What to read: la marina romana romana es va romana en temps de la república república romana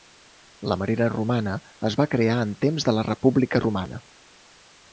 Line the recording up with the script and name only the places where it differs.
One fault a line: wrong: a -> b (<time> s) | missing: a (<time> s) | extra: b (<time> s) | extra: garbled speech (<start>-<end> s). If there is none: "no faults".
missing: romana (1.5 s)
wrong: romana -> crear (2.1 s)
missing: república (3.6 s)